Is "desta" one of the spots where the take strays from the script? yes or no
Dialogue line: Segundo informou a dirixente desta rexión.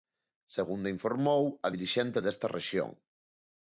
no